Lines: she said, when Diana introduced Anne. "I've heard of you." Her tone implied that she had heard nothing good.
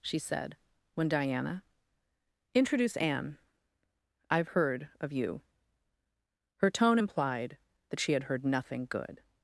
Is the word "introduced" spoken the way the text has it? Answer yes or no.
no